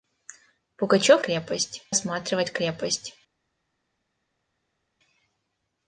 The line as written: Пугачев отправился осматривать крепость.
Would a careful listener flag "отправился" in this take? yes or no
yes